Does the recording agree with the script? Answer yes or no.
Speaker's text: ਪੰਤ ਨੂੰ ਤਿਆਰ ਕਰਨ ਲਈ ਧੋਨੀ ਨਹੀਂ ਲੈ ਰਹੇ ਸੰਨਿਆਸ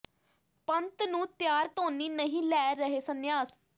no